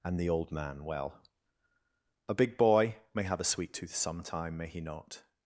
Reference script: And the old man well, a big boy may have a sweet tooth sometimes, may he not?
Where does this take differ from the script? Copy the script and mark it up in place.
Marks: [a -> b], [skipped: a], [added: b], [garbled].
And the old man well, a big boy may have a sweet tooth [sometimes, -> sometime] may he not?